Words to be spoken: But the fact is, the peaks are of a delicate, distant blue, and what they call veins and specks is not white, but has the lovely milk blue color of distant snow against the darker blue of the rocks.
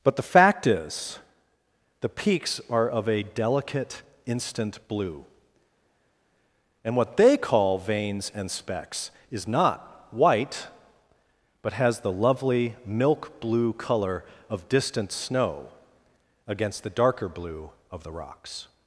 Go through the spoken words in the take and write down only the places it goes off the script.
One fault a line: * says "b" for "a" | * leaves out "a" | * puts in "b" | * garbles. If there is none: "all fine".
* says "instant" for "distant"